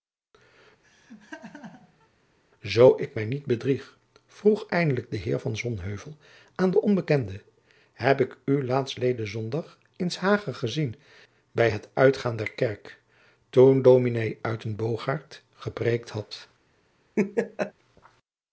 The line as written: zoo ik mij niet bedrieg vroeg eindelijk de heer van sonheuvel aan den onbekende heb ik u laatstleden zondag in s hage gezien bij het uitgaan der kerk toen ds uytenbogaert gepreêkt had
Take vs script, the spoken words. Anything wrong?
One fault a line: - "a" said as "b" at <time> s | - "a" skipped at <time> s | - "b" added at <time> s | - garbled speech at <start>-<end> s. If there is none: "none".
none